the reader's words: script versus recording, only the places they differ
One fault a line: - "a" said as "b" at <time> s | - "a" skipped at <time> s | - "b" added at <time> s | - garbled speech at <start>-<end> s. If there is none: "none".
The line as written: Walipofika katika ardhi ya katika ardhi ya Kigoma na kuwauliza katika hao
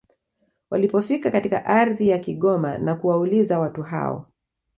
- "katika ardhi ya" skipped at 2.2 s
- "katika" said as "watu" at 3.6 s